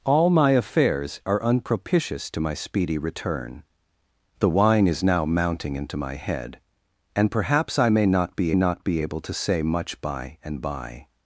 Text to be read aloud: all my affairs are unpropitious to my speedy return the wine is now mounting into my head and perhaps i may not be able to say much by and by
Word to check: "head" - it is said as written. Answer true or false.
true